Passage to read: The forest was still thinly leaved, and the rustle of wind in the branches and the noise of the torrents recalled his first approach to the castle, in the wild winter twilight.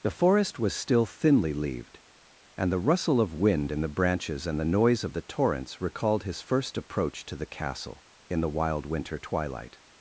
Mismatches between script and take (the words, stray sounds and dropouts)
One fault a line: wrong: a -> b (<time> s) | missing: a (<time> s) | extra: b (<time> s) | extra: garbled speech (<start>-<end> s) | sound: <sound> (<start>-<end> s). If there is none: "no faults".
no faults